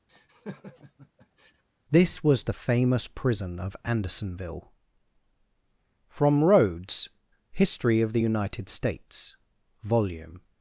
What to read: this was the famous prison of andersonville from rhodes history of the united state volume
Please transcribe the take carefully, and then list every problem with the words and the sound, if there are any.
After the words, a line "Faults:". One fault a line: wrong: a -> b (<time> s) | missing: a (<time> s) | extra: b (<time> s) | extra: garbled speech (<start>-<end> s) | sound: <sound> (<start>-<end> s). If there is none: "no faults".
this was the famous prison of andersonville from rhodes history of the united states volume
Faults:
sound: laugh (0.1-1.6 s)
wrong: state -> states (8.7 s)